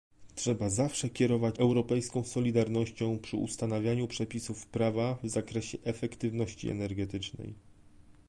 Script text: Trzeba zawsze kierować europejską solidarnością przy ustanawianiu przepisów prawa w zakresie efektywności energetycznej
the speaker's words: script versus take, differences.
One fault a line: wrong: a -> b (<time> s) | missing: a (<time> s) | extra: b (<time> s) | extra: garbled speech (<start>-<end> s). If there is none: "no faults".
no faults